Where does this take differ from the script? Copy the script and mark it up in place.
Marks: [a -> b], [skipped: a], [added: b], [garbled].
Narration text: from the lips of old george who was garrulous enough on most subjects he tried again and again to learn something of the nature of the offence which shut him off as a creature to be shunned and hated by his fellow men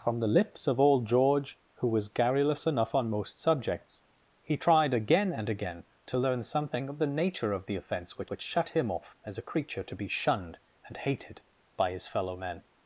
from the lips of old george who was garrulous enough on most subjects he tried again and again to learn something of the nature of the offence which [added: which] shut him off as a creature to be shunned and hated by his fellow men